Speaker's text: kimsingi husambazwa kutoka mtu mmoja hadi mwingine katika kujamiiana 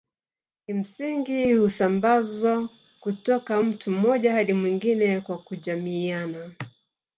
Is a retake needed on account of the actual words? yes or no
yes